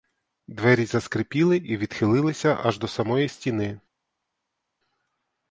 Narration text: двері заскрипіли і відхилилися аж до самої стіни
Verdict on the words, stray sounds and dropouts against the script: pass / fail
pass